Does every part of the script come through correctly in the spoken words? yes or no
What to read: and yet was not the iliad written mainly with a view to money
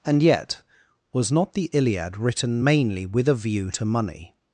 yes